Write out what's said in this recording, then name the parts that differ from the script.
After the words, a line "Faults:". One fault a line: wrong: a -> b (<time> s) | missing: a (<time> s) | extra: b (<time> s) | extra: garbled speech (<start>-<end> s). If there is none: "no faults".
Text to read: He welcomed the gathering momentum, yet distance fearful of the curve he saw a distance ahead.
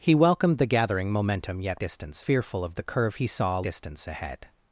He welcomed the gathering momentum, yet distance fearful of the curve he saw a distance ahead.
Faults:
no faults